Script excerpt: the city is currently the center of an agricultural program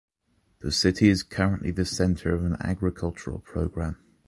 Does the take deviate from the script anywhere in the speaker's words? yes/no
no